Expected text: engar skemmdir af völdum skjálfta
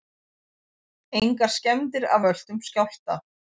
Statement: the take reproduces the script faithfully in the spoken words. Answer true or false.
true